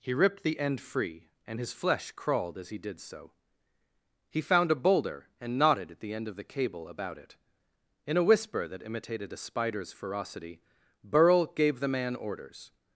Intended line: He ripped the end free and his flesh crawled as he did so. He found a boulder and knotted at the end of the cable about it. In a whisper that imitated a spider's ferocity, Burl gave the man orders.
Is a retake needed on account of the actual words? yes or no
no